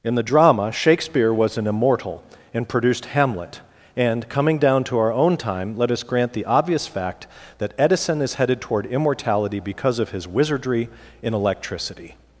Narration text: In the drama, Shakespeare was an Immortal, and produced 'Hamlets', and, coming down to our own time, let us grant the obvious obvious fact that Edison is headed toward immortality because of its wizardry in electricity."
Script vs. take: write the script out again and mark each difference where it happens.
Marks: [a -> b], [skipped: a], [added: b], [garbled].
In the drama, Shakespeare was an Immortal, and produced ['Hamlets', -> Hamlet] and, coming down to our own time, let us grant the obvious [skipped: obvious] fact that Edison is headed toward immortality because of [its -> his] wizardry in electricity."